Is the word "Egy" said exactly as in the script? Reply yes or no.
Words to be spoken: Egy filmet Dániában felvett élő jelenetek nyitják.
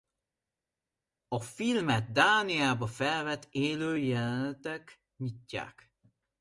no